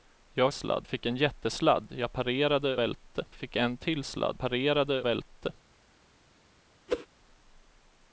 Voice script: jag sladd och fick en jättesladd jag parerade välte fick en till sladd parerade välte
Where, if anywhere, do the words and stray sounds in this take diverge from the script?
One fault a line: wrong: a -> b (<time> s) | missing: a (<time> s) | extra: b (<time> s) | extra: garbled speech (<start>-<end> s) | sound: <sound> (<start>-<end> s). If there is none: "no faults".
sound: whoosh (6.9-7.1 s)